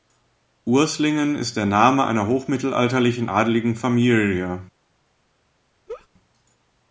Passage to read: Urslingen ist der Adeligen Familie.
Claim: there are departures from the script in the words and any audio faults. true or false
true